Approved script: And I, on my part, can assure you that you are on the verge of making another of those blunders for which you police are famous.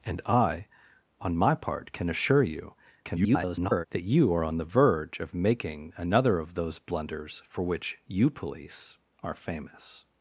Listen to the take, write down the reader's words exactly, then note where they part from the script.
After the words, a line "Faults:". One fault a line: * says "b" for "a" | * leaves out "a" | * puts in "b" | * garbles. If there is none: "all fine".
And I, on my part, can assure you [garbled] that you are on the verge of making another of those blunders for which you police are famous.
Faults:
* garbles